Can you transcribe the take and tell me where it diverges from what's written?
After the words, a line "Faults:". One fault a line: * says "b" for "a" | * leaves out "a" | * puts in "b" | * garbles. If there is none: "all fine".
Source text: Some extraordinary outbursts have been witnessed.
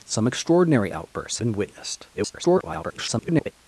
Some extraordinary outbursts been witnessed. [garbled]
Faults:
* leaves out "have"
* garbles